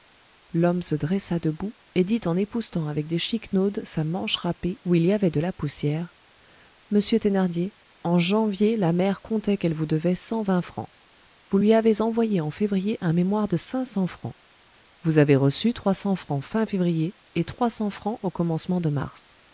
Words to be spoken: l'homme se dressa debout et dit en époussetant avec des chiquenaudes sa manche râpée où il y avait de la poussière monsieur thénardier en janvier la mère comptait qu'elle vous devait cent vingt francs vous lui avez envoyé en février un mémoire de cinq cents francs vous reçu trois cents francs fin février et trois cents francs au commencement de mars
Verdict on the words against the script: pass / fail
fail